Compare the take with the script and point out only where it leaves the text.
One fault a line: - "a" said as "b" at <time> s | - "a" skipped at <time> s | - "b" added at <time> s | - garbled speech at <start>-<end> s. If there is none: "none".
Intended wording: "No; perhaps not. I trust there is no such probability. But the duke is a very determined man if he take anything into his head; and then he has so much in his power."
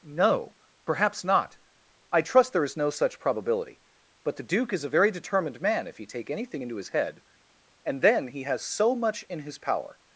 none